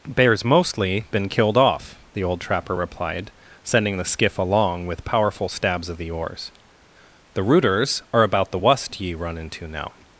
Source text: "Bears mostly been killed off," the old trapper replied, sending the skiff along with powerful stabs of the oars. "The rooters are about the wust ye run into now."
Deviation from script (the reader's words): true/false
false